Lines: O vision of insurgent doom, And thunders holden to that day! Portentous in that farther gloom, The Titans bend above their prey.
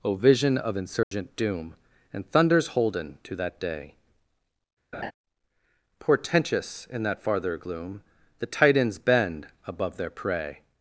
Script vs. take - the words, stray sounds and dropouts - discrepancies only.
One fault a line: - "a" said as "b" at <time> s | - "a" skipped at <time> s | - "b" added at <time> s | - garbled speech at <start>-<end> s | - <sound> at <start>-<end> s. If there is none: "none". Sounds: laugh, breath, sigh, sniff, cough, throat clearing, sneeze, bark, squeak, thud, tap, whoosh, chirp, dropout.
- dropout at 1.0-1.1 s
- laugh at 4.9-5.1 s